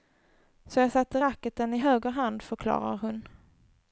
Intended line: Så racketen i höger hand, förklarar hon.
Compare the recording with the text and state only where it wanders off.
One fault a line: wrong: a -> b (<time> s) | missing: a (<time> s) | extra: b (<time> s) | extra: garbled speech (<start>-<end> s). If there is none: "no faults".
extra: jag satte (0.8 s)